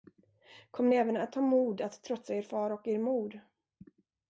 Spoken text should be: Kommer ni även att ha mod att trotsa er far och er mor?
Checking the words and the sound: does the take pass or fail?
pass